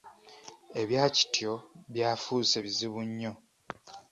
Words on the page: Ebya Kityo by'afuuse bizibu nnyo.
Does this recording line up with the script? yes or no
yes